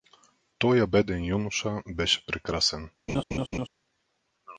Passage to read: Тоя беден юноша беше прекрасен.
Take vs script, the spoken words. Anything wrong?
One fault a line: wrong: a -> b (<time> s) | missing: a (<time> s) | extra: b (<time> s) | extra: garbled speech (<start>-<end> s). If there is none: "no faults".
no faults